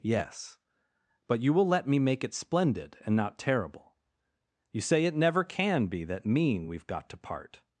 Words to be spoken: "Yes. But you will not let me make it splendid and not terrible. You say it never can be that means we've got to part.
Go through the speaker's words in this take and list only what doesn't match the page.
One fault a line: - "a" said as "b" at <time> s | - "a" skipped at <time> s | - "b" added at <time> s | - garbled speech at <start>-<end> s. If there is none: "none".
- "not" skipped at 1.7 s
- "means" said as "mean" at 6.2 s